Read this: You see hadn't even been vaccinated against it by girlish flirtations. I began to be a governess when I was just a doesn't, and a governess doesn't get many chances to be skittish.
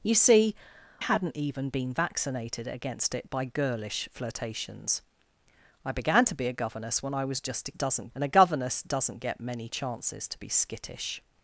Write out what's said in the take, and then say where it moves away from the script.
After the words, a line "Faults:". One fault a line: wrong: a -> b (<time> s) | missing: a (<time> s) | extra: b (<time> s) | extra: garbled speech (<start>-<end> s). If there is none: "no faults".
You see hadn't even been vaccinated against it by girlish flirtations. I began to be a governess when I was just a doesn't, and a governess doesn't get many chances to be skittish.
Faults:
no faults